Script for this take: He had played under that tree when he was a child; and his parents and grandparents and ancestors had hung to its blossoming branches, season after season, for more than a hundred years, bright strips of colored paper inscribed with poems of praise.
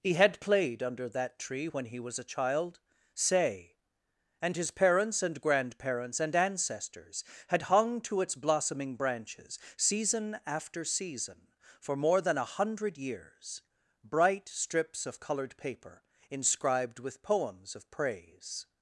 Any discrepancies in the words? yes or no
yes